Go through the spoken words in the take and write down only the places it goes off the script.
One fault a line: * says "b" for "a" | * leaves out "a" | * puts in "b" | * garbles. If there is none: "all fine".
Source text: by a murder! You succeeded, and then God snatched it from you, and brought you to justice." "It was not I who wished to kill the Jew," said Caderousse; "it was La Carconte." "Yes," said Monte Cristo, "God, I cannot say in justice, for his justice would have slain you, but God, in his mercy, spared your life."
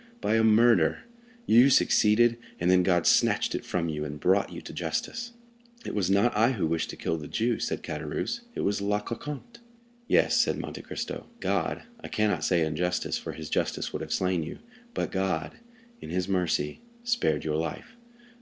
all fine